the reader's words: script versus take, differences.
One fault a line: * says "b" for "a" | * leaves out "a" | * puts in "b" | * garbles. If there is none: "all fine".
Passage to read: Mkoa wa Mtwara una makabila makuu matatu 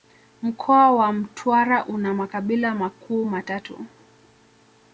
all fine